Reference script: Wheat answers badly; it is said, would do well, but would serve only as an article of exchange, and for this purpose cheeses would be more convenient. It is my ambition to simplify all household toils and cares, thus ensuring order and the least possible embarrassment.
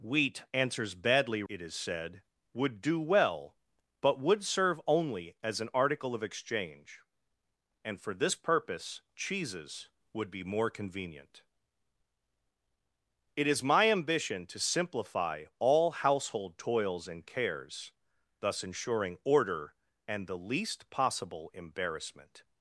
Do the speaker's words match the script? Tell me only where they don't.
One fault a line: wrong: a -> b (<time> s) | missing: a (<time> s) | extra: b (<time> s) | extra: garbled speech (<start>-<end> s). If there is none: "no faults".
no faults